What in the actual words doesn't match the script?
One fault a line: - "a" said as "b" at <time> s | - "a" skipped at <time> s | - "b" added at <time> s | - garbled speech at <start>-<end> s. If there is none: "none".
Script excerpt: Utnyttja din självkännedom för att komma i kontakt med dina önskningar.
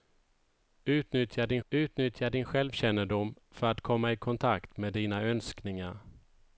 - "utnyttja din" added at 1.7 s